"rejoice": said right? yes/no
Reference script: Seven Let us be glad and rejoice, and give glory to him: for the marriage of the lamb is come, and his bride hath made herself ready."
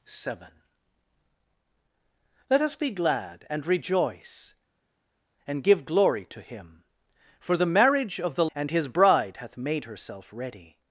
yes